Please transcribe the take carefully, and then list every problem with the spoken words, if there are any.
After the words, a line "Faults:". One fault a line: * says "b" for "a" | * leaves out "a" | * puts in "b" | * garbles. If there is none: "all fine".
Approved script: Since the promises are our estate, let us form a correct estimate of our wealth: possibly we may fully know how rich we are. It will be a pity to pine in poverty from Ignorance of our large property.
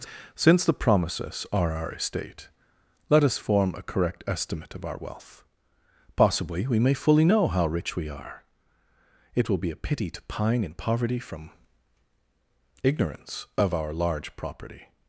Since the promises are our estate, let us form a correct estimate of our wealth: possibly we may fully know how rich we are. It will be a pity to pine in poverty from Ignorance of our large property.
Faults:
all fine